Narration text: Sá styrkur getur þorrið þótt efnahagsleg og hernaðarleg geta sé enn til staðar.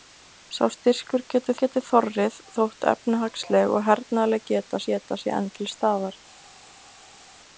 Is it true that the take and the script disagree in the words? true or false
true